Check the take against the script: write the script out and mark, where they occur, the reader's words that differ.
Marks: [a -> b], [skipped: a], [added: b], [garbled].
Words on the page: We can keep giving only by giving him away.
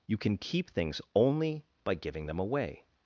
[We -> You] can keep [giving -> things] only by giving [him -> them] away.